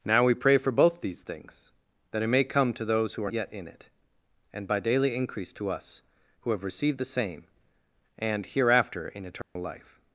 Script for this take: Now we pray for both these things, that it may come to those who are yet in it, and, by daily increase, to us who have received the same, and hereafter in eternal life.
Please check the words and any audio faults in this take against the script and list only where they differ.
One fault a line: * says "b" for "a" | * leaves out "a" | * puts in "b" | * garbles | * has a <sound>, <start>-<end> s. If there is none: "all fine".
* has a dropout, 9.4-9.6 s